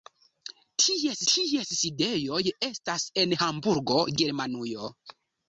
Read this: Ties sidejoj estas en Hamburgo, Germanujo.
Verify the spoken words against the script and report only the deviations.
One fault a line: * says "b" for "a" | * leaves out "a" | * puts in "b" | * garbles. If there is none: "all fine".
* puts in "ties"